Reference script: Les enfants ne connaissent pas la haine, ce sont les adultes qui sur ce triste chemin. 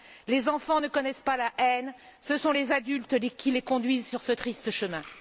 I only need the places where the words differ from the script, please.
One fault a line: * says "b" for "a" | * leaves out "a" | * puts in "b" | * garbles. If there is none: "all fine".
* puts in "les conduisent"